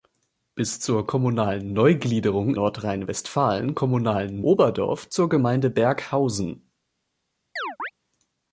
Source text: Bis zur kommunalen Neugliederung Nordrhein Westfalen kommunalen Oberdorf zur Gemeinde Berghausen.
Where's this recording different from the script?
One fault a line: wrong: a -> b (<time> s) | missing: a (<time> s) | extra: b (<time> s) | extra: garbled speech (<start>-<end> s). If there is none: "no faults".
no faults